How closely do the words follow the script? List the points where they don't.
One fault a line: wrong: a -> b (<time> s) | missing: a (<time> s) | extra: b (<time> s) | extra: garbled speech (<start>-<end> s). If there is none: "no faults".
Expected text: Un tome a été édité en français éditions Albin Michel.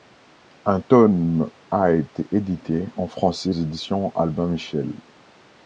no faults